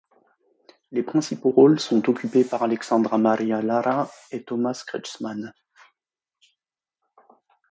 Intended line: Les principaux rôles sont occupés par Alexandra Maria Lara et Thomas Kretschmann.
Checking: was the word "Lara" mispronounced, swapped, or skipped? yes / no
no